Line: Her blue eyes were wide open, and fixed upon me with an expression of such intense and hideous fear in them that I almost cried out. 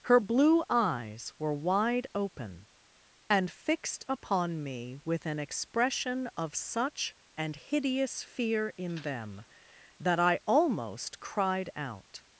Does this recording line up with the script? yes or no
no